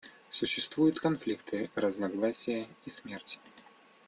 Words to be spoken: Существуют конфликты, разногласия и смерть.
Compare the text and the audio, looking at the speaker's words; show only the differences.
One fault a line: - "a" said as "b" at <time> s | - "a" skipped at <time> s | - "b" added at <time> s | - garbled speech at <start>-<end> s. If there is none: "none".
none